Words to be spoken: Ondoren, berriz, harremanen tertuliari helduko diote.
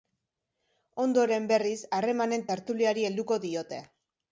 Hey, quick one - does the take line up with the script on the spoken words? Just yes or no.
yes